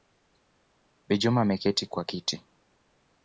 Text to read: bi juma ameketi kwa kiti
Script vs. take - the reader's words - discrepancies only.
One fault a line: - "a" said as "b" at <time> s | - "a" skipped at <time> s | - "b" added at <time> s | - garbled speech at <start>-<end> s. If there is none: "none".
none